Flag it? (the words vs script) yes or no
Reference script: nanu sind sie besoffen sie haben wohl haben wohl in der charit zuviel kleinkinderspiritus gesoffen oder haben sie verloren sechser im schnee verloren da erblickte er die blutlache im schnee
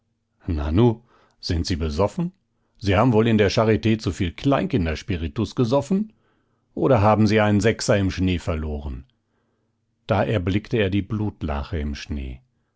yes